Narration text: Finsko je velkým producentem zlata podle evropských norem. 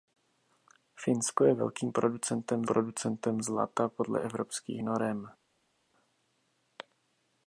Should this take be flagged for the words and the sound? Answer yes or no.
yes